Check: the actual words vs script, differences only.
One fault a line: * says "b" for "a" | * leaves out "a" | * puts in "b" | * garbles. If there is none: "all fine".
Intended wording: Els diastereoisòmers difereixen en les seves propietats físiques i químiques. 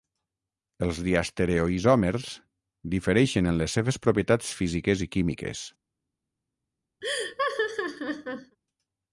all fine